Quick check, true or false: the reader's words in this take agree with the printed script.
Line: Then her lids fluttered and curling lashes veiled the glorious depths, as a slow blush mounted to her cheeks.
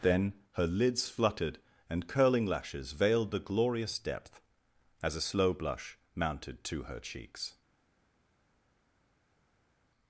false